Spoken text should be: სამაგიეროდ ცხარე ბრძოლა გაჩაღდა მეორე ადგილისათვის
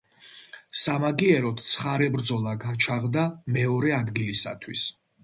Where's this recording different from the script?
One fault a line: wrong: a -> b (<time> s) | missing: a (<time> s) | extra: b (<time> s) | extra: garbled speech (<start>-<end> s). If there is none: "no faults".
no faults